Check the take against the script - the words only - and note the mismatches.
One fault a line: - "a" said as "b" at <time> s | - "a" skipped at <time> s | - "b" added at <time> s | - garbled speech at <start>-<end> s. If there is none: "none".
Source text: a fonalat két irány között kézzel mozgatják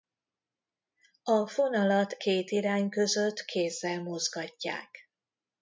none